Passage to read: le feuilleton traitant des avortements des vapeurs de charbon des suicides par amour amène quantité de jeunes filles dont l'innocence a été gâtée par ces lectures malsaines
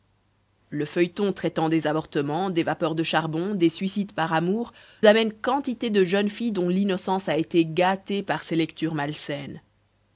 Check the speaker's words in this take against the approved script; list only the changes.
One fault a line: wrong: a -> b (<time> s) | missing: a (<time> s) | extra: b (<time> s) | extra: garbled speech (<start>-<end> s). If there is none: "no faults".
no faults